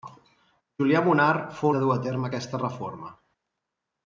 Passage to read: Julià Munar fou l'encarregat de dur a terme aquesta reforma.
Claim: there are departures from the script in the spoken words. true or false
true